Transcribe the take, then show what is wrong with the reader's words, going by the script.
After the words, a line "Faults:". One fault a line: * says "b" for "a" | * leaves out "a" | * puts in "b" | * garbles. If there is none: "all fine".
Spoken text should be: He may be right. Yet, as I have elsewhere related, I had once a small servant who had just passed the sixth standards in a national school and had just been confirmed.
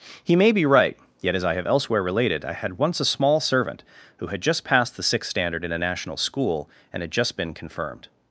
He may be right. Yet, as I have elsewhere related, I had once a small servant who had just passed the sixth standard in a national school and had just been confirmed.
Faults:
* says "standard" for "standards"